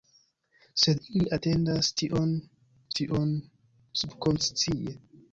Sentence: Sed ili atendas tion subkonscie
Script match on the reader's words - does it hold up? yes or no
no